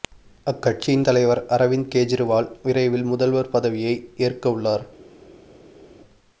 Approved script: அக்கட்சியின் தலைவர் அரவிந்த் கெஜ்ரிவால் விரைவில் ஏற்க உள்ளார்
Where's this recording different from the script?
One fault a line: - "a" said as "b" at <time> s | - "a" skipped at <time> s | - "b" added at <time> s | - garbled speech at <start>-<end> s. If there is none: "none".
- "முதல்வர் பதவியை" added at 3.1 s